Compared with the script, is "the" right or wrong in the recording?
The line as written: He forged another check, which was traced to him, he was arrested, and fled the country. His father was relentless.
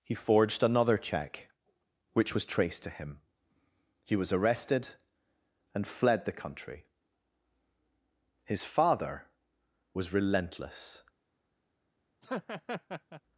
right